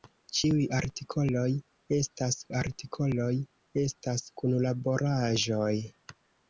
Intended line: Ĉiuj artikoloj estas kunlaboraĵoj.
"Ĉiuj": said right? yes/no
yes